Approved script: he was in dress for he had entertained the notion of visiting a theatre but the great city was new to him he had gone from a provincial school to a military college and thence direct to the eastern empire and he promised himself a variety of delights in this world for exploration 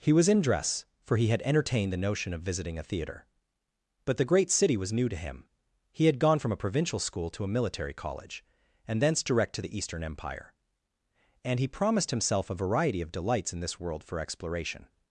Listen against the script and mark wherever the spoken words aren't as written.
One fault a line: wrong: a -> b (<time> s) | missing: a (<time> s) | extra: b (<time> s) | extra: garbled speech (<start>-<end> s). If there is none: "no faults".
no faults